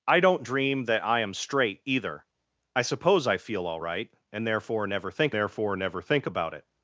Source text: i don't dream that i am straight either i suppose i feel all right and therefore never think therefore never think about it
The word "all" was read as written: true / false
true